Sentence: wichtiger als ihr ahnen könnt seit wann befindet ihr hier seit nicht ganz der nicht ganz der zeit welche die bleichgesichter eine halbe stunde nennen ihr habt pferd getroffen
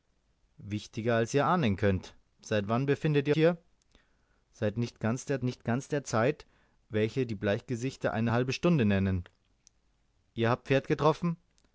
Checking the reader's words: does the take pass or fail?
pass